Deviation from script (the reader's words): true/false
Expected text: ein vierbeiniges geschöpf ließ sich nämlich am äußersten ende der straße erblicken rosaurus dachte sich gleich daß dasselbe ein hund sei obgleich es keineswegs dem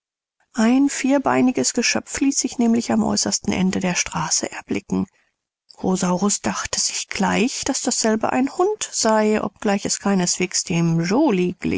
false